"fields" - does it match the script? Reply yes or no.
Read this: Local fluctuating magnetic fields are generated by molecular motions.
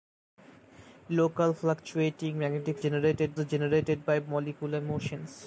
no